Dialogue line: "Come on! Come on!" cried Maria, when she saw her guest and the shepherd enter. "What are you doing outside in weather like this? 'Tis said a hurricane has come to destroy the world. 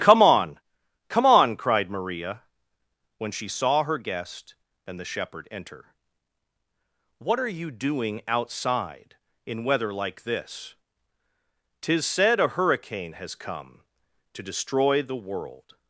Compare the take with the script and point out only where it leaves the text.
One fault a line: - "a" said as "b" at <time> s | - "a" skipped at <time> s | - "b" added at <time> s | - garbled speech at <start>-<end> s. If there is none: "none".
none